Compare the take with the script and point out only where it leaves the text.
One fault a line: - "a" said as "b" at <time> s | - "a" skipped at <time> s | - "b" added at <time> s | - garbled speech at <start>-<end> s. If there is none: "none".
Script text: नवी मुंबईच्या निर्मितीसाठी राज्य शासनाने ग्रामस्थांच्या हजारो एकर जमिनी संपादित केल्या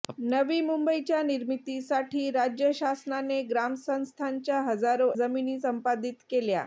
- "एकर" skipped at 5.1 s